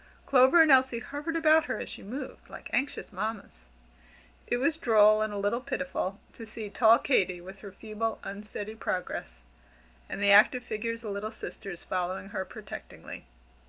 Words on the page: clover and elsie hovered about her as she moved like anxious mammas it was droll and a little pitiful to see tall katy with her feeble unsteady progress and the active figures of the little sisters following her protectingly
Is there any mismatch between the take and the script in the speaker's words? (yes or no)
yes